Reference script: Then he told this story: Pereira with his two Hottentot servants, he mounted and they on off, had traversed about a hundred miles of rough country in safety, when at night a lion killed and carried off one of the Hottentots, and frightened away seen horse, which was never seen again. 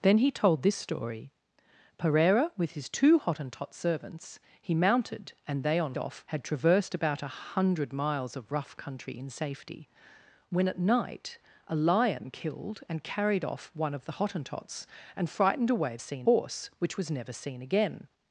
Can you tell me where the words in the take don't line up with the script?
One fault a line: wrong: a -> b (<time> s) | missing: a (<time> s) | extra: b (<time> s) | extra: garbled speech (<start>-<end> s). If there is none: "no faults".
no faults